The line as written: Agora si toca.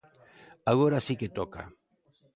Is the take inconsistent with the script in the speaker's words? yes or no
yes